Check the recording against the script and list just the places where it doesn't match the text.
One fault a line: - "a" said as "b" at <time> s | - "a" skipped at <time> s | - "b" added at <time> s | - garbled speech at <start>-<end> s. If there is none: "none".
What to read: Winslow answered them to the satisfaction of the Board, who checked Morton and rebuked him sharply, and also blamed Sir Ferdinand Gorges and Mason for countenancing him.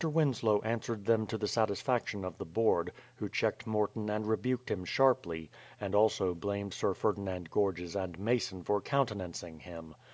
none